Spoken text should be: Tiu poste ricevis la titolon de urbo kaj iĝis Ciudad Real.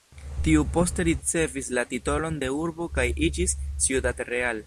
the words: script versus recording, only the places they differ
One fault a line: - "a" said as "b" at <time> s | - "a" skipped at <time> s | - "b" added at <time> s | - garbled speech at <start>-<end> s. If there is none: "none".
none